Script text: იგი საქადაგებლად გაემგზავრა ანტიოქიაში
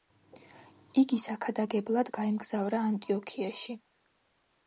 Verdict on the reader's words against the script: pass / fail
pass